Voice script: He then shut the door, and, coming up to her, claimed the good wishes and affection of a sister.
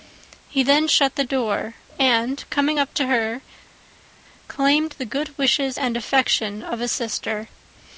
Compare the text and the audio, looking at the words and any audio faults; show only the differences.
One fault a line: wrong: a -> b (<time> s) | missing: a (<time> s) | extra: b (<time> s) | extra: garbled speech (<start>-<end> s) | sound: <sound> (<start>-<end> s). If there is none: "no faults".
no faults